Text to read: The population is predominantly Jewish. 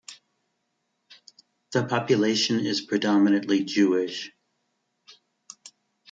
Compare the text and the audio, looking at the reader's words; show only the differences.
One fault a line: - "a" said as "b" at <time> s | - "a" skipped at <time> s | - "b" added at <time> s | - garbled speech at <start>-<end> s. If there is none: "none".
none